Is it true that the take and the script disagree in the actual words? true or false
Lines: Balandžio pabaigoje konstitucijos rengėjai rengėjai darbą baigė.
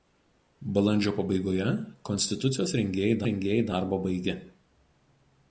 false